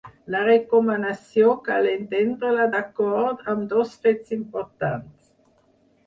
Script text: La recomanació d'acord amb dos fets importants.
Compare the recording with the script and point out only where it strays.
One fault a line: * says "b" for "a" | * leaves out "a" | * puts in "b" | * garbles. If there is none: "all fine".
* puts in "cal entendre la"